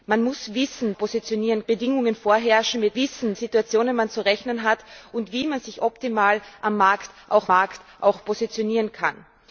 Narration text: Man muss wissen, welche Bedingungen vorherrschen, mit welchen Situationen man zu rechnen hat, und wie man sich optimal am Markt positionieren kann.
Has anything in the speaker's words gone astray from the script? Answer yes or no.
yes